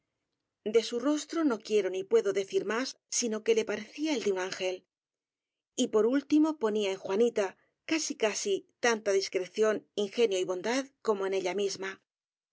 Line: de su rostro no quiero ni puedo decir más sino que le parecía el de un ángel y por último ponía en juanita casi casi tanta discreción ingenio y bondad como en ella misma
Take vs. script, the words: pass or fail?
pass